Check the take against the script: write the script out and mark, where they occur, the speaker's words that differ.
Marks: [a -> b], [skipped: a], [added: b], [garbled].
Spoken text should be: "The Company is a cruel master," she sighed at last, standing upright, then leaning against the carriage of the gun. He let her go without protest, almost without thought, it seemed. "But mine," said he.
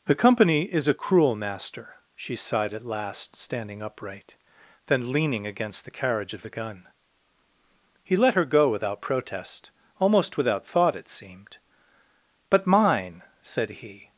"The Company is a cruel master," she sighed at last, standing upright, then leaning against the carriage of the gun. He let her go without protest, almost without thought, it seemed. "But mine," said he.